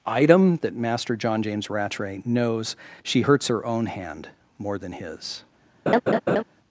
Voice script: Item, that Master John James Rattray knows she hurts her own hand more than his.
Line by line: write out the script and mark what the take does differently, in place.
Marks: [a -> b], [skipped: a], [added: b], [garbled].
Item, that Master John James Rattray knows she hurts her own hand more than his.